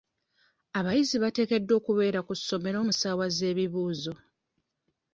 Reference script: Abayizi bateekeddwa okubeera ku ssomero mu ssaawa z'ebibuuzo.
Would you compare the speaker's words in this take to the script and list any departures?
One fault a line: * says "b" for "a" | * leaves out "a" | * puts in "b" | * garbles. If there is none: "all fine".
all fine